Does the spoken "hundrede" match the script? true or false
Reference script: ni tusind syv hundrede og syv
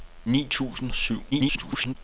false